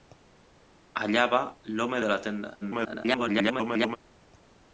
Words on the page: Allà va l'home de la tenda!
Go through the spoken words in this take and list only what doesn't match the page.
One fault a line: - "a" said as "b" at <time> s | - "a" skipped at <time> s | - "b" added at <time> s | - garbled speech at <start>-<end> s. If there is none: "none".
- garbled speech at 2.6-4.0 s